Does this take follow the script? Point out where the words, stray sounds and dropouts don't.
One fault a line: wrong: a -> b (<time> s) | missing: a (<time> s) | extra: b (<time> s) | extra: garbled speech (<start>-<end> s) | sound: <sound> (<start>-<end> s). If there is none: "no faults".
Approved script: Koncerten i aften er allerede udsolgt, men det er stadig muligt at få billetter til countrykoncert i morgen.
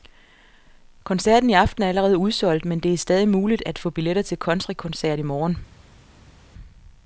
no faults